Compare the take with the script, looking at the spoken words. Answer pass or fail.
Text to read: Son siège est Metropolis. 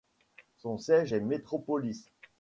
pass